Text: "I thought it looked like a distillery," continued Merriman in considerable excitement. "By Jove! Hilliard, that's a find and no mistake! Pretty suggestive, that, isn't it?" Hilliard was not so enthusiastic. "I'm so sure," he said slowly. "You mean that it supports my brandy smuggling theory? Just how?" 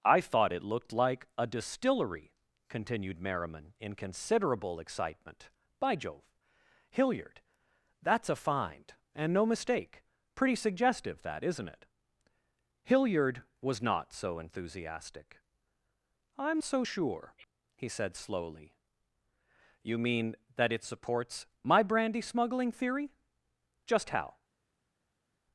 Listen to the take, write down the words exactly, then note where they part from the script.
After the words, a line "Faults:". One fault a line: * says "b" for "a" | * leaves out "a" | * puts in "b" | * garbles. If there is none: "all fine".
"I thought it looked like a distillery," continued Merriman in considerable excitement. "By Jove! Hilliard, that's a find and no mistake! Pretty suggestive, that, isn't it?" Hilliard was not so enthusiastic. "I'm so sure," he said slowly. "You mean that it supports my brandy smuggling theory? Just how?"
Faults:
all fine